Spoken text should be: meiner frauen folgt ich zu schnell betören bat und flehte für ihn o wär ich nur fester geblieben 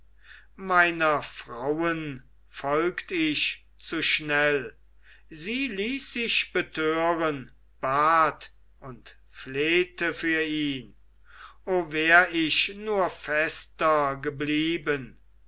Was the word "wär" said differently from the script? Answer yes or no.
no